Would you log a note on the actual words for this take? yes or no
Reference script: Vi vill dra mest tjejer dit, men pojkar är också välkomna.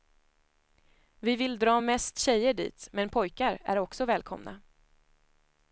no